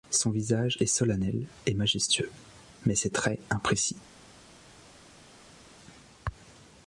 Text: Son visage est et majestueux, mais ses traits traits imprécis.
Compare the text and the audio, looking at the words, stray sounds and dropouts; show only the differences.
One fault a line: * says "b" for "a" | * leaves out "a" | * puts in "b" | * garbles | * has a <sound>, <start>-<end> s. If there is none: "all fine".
* puts in "solennel"
* leaves out "traits"